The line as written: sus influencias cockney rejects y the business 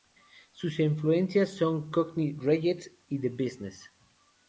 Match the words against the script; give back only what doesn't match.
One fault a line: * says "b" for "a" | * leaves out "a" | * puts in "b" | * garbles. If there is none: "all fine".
* puts in "son"